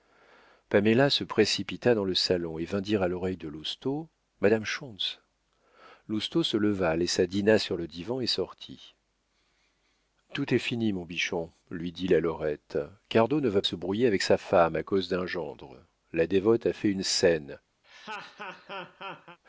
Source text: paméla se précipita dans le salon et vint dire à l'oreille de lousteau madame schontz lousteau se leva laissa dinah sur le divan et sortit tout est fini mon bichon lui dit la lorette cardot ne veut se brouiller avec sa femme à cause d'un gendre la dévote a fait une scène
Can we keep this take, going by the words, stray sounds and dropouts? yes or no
no